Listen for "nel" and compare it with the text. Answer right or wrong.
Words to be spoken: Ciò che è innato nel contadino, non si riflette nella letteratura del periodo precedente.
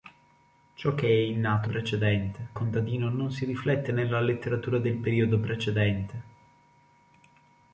wrong